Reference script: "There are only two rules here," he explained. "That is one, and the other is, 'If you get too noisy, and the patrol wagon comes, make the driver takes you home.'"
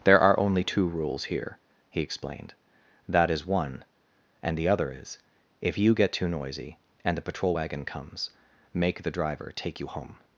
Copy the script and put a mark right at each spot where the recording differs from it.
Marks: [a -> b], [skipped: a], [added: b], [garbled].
"There are only two rules here," he explained. "That is one, and the other is, 'If you get too noisy, and the patrol wagon comes, make the driver [takes -> take] you home.'"